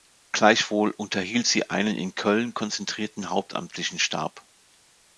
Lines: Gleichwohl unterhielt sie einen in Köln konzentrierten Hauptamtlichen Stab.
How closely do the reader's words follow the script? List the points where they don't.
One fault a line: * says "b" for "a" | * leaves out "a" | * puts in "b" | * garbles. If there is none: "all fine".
all fine